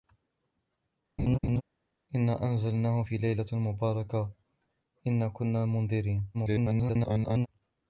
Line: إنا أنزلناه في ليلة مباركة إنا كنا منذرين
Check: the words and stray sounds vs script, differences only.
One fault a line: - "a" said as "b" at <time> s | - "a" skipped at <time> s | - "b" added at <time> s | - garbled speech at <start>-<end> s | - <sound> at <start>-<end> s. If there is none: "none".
- laugh at 1.2-1.6 s
- garbled speech at 6.3-7.5 s